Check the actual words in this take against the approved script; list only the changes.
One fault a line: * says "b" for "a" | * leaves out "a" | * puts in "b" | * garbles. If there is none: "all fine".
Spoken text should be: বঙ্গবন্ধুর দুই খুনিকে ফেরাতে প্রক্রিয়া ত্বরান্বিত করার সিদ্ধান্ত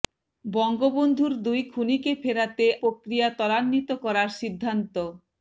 all fine